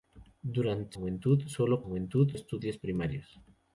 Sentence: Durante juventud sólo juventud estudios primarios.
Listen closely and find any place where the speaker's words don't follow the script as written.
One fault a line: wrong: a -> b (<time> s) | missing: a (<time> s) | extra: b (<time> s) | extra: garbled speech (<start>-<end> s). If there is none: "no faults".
no faults